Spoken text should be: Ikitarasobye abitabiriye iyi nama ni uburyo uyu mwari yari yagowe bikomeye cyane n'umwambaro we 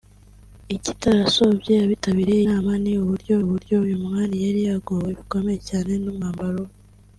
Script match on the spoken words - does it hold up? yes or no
no